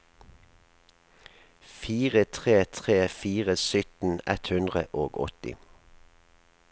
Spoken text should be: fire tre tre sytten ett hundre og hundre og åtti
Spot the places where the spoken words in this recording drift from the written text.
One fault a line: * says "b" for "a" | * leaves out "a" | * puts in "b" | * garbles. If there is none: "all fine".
* puts in "fire"
* leaves out "hundre og"